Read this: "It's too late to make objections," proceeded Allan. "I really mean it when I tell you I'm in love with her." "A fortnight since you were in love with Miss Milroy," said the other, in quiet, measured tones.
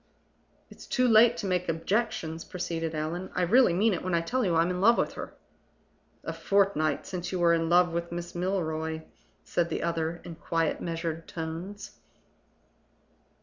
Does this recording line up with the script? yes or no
yes